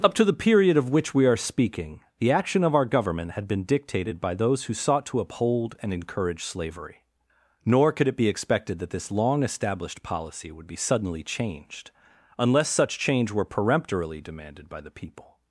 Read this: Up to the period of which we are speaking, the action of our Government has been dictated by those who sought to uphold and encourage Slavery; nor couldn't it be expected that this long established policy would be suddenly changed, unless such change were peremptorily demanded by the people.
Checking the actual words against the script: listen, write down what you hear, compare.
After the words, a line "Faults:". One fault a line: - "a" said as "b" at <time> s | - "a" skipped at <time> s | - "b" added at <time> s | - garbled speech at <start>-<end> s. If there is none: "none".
Up to the period of which we are speaking, the action of our Government had been dictated by those who sought to uphold and encourage Slavery; nor could it be expected that this long established policy would be suddenly changed, unless such change were peremptorily demanded by the people.
Faults:
- "has" said as "had" at 3.3 s
- "couldn't" said as "could" at 7.9 s